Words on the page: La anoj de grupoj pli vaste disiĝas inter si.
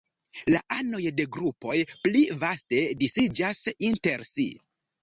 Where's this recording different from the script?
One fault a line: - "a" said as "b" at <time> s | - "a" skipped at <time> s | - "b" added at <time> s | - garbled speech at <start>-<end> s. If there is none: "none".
none